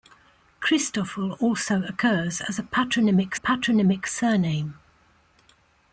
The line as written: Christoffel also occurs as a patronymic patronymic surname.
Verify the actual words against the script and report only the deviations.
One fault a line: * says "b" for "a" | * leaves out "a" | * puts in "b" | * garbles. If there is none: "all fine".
all fine